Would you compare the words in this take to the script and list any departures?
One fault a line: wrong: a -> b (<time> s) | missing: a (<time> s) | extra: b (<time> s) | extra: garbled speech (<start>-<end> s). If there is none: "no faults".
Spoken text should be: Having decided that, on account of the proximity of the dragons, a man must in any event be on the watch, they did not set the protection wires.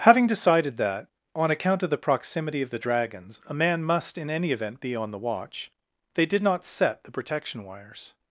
no faults